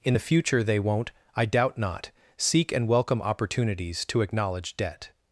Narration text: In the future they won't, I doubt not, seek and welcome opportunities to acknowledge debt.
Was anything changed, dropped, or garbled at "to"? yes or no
no